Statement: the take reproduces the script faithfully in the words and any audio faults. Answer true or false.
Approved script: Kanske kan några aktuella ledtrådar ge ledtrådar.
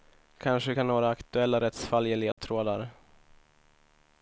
false